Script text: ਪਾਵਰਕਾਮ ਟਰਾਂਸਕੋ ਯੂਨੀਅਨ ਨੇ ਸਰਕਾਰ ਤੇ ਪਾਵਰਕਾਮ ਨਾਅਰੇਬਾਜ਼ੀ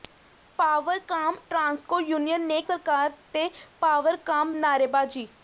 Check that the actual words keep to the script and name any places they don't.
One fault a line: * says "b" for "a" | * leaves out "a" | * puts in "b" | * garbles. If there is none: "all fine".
all fine